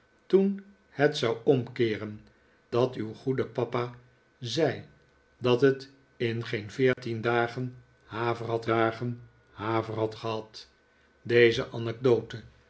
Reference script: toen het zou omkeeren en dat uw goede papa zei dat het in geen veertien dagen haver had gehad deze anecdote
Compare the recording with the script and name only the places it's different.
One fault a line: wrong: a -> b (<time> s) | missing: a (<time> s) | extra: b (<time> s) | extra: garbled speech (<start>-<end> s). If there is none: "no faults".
missing: en (2.2 s)
extra: dagen haver had (8.6 s)